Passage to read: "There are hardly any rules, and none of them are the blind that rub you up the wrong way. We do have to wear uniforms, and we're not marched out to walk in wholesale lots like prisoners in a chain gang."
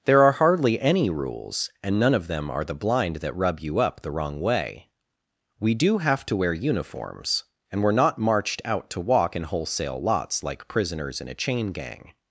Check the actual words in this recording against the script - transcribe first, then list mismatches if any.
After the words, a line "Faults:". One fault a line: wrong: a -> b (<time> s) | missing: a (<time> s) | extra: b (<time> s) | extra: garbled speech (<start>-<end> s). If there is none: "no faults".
"There are hardly any rules, and none of them are the blind that rub you up the wrong way. We do have to wear uniforms, and we're not marched out to walk in wholesale lots like prisoners in a chain gang."
Faults:
no faults